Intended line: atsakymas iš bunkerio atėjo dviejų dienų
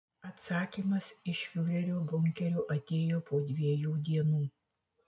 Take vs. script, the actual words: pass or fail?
fail